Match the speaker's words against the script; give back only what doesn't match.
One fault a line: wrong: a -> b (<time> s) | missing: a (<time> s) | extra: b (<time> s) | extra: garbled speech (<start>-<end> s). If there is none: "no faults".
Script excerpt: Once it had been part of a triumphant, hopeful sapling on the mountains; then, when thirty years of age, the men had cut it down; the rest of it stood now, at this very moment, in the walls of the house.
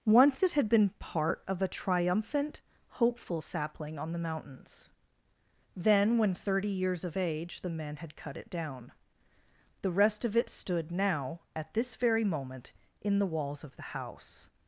no faults